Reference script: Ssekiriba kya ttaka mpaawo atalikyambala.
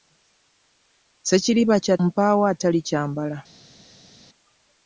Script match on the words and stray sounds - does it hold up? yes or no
no